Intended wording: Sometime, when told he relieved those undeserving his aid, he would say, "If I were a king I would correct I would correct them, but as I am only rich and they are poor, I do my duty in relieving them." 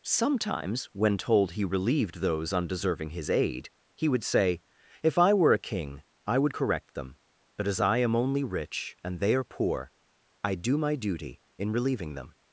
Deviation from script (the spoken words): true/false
true